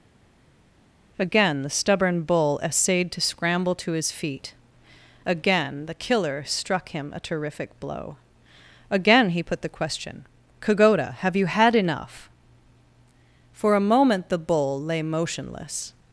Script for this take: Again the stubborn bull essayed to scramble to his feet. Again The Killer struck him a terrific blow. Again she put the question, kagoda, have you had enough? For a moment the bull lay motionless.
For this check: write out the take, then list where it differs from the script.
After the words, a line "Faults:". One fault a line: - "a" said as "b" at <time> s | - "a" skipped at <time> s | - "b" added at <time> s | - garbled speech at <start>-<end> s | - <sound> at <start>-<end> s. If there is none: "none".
Again the stubborn bull essayed to scramble to his feet. Again The Killer struck him a terrific blow. Again he put the question, kagoda, have you had enough? For a moment the bull lay motionless.
Faults:
- "she" said as "he" at 9.3 s